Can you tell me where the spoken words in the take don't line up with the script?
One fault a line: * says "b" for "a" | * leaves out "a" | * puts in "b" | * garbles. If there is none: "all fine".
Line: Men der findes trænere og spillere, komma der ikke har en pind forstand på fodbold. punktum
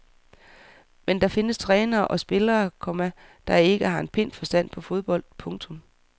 all fine